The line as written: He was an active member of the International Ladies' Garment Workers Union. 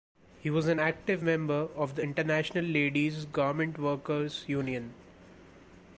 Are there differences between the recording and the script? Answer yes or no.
no